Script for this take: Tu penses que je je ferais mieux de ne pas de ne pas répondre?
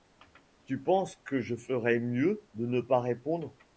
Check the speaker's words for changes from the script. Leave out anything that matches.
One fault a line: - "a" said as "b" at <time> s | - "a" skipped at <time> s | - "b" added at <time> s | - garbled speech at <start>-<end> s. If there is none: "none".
- "je" skipped at 1.6 s
- "de ne pas" skipped at 3.0 s